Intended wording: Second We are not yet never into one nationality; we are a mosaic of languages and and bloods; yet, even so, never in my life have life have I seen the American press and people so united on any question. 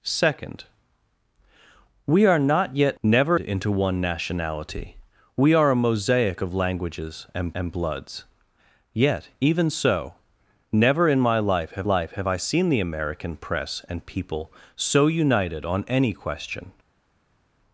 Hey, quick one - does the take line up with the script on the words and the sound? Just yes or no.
yes